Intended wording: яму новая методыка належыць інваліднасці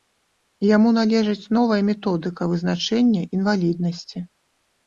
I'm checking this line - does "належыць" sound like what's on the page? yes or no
no